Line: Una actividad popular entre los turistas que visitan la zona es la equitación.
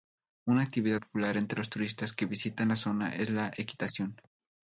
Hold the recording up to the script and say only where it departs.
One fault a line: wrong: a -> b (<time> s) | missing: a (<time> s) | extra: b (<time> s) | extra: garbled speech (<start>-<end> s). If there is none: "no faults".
no faults